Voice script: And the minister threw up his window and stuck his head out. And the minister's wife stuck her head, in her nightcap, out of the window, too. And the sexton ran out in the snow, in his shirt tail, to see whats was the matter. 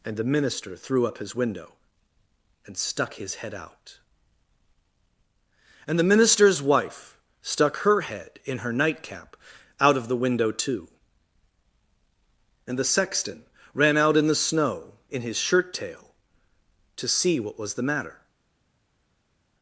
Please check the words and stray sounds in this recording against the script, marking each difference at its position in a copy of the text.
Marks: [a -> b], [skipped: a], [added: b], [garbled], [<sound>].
And the minister threw up his window and stuck his head out. And the minister's wife stuck her head, in her nightcap, out of the window, too. And the sexton ran out in the snow, in his shirt tail, to see [whats -> what] was the matter.